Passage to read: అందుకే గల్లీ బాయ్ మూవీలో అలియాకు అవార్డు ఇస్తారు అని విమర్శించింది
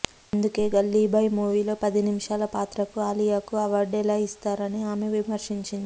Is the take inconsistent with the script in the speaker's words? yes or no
yes